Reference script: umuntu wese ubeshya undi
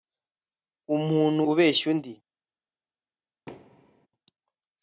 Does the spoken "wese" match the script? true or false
false